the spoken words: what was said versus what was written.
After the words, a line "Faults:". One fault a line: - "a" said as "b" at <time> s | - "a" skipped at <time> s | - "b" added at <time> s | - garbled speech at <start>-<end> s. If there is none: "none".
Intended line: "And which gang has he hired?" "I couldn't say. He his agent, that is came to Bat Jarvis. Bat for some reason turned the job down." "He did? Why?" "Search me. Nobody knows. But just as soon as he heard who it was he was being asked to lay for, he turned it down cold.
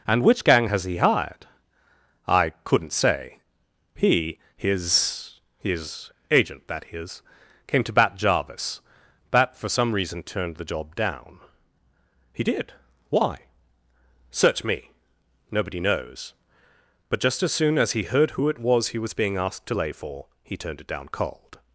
"And which gang has he hired?" "I couldn't say. He his his agent, that is came to Bat Jarvis. Bat for some reason turned the job down." "He did? Why?" "Search me. Nobody knows. But just as soon as he heard who it was he was being asked to lay for, he turned it down cold.
Faults:
- "his" added at 5.6 s